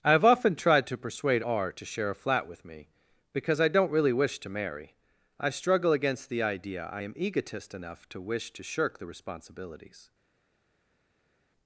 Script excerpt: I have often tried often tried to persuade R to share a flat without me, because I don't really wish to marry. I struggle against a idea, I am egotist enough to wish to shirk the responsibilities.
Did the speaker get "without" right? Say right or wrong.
wrong